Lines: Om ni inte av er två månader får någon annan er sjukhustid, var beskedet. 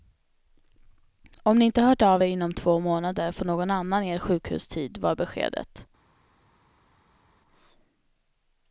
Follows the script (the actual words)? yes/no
no